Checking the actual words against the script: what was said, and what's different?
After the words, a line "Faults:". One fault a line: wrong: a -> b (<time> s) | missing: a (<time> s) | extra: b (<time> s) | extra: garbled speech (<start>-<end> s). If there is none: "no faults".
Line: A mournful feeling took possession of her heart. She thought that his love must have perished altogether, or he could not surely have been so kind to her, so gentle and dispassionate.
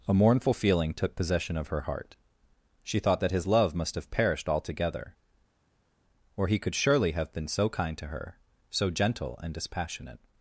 A mournful feeling took possession of her heart. She thought that his love must have perished altogether, or he could surely have been so kind to her, so gentle and dispassionate.
Faults:
missing: not (6.8 s)